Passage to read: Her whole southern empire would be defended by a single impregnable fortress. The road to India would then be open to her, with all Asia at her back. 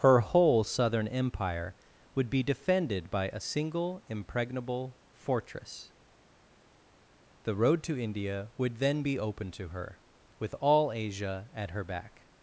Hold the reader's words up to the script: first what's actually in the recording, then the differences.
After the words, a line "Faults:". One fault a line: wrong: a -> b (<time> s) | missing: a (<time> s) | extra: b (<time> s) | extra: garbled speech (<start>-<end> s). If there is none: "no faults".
Her whole southern empire would be defended by a single impregnable fortress. The road to India would then be open to her, with all Asia at her back.
Faults:
no faults